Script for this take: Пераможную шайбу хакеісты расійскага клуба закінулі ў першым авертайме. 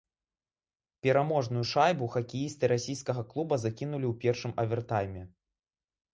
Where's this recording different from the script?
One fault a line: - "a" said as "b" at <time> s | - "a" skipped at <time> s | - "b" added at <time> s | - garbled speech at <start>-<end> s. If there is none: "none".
none